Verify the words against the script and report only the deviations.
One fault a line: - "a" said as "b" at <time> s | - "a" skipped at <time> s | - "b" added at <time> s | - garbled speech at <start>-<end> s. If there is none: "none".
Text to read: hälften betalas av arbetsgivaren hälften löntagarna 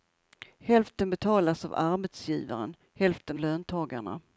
none